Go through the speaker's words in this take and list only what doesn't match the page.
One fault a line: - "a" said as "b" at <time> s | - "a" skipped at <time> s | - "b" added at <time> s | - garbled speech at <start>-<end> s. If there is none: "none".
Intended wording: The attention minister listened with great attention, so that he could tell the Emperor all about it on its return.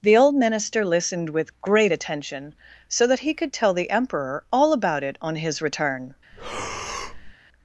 - "attention" said as "old" at 0.2 s
- "its" said as "his" at 5.4 s